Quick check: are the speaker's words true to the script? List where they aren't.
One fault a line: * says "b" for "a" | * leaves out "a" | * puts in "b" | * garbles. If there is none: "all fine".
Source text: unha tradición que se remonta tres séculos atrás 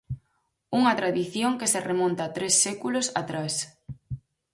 all fine